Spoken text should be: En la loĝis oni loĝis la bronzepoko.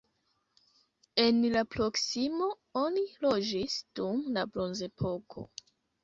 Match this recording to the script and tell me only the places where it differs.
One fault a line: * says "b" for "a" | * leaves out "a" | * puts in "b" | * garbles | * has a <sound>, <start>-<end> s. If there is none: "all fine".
* says "proksimo" for "loĝis"
* puts in "dum"